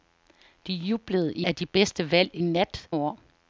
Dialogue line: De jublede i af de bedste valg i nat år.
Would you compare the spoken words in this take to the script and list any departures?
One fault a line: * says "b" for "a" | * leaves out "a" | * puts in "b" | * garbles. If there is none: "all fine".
all fine